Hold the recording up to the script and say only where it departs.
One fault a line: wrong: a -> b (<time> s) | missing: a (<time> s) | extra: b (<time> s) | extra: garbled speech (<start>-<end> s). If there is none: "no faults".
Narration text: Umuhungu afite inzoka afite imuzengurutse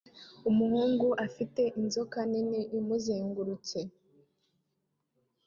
wrong: afite -> nini (2.3 s)